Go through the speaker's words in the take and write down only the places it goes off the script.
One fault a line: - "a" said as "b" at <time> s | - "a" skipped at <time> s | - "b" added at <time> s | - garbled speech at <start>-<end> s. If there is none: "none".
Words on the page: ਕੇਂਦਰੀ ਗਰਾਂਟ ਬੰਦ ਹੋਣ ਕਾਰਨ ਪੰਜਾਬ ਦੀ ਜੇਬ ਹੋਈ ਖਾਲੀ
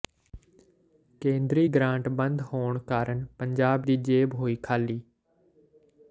none